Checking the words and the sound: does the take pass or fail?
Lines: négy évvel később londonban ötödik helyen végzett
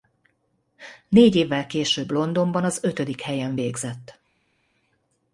fail